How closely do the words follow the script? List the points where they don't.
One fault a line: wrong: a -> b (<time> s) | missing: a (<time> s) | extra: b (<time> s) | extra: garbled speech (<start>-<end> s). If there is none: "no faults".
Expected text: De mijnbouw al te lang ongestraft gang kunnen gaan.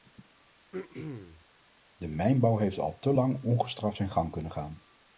extra: heeft (2.6 s)
extra: zijn (3.9 s)